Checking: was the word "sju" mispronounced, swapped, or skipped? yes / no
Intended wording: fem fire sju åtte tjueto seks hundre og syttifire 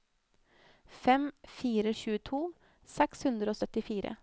yes